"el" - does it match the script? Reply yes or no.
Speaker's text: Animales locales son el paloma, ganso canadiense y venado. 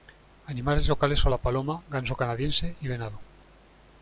no